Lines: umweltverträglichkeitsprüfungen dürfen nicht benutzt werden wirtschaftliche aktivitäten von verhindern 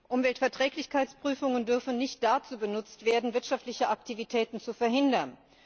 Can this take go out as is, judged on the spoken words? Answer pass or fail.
fail